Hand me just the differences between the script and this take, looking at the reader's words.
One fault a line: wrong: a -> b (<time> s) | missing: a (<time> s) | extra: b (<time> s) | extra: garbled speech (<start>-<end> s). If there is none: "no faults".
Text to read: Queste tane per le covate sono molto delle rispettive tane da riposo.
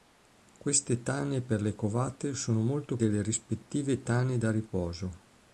no faults